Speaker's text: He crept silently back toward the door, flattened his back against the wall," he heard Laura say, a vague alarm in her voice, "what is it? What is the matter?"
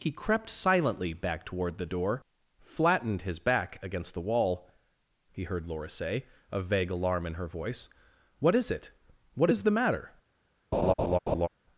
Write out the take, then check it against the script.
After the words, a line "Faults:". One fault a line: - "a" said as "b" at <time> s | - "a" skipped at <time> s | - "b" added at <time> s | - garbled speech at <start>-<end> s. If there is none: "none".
He crept silently back toward the door, flattened his back against the wall," he heard Laura say, a vague alarm in her voice, "what is it? What is the matter?"
Faults:
none